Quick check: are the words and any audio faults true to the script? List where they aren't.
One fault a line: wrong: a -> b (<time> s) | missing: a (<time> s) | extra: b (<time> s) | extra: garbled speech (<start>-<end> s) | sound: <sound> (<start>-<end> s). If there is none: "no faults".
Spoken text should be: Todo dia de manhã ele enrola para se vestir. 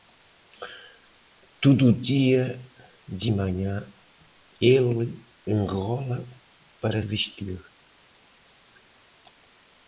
missing: se (7.0 s)